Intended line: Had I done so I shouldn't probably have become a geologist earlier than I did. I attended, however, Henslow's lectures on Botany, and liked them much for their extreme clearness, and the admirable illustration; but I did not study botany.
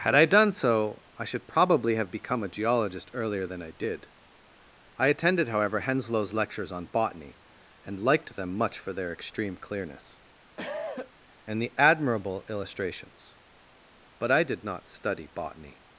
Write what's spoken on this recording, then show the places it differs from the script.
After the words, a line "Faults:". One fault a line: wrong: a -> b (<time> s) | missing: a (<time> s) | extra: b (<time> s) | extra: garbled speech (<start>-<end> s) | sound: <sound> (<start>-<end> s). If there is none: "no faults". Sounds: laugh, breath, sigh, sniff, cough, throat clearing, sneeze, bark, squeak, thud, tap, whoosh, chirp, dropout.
Had I done so I should probably have become a geologist earlier than I did. I attended, however, Henslow's lectures on Botany, and liked them much for their extreme clearness, and the admirable illustrations; but I did not study botany.
Faults:
wrong: shouldn't -> should (1.2 s)
sound: cough (10.6-11.1 s)
wrong: illustration -> illustrations (12.5 s)